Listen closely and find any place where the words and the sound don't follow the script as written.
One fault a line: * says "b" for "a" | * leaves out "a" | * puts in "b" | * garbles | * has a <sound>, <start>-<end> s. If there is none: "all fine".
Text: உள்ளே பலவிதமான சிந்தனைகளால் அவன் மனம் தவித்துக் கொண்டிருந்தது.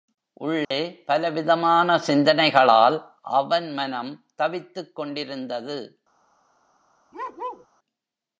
* has a dropout, 0.6-0.7 s
* has a bark, 7.1-7.7 s